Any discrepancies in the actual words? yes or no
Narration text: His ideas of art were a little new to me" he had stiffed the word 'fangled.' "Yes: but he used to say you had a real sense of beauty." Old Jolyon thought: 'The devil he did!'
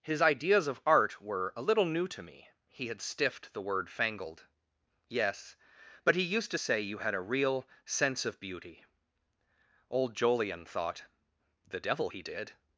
no